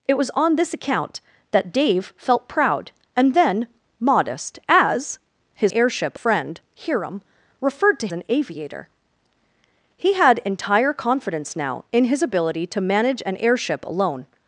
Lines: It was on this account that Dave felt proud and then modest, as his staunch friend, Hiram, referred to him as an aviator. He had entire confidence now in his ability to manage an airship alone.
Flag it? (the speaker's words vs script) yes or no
yes